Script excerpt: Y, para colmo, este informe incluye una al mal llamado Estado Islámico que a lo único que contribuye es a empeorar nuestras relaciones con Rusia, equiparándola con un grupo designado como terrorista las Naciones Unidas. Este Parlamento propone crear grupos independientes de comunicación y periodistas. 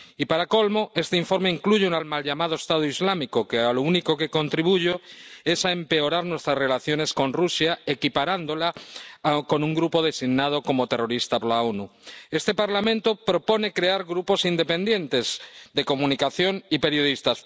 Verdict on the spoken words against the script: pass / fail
pass